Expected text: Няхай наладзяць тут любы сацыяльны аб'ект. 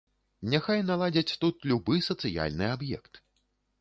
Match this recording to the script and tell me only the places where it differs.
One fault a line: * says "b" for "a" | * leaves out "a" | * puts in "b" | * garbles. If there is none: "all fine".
all fine